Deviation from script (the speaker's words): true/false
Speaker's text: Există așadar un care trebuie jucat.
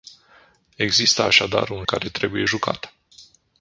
false